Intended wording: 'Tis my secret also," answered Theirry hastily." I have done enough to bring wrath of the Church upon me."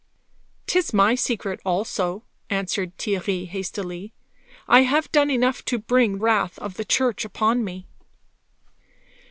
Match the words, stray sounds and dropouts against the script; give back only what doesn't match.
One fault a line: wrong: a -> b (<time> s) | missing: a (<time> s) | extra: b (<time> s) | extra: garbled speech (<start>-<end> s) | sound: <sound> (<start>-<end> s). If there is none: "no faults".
no faults